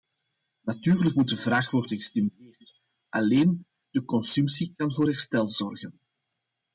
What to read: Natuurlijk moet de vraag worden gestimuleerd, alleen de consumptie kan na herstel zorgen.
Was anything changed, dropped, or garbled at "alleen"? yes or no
no